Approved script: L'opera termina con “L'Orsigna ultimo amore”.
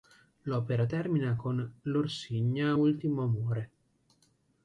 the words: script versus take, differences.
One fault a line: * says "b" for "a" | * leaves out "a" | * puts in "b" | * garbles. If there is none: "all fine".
all fine